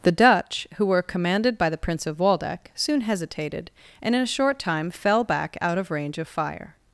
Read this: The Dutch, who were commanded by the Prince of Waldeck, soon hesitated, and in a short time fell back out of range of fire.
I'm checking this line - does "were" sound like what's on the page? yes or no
yes